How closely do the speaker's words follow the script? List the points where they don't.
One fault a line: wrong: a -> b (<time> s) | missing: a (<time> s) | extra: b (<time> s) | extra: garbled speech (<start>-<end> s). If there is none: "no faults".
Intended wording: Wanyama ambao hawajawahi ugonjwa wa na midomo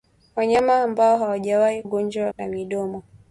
no faults